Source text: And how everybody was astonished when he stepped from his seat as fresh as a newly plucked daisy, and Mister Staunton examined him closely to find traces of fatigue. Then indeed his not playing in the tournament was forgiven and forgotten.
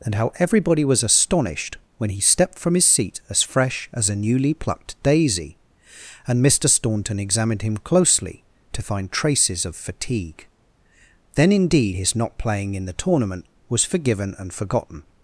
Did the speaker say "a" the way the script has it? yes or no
yes